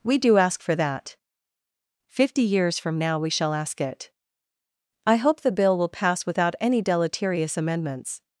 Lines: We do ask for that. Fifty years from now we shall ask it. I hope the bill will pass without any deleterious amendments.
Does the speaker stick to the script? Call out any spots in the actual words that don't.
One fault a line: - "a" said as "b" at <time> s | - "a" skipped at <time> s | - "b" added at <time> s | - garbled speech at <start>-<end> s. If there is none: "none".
none